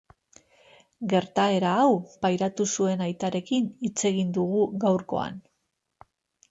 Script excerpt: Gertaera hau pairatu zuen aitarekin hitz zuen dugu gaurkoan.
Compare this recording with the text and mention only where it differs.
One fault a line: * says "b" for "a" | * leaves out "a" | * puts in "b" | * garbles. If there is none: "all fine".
* says "egin" for "zuen"